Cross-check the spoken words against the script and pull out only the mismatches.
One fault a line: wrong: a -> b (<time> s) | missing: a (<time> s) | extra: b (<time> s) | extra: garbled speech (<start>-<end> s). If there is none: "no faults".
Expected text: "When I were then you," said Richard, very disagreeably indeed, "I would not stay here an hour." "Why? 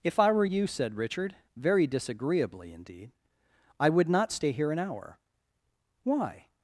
wrong: When -> If (0.0 s)
missing: then (0.5 s)